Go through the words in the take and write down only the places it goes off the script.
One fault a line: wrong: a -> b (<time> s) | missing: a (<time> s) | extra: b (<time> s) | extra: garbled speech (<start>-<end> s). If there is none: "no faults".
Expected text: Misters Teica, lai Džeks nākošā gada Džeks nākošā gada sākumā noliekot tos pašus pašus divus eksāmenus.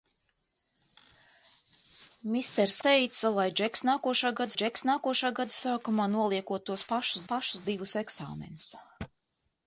no faults